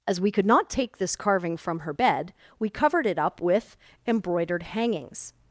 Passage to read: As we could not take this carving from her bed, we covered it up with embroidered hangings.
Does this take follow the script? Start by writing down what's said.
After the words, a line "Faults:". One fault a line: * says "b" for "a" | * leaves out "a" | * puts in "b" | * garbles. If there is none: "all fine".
As we could not take this carving from her bed, we covered it up with embroidered hangings.
Faults:
all fine